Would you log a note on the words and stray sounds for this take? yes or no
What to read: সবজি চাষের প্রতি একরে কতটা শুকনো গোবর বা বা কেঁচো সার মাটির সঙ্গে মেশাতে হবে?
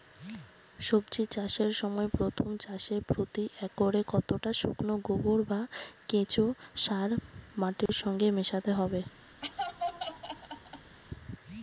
yes